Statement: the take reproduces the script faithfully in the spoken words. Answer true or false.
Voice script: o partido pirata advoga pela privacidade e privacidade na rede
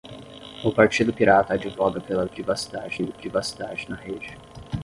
true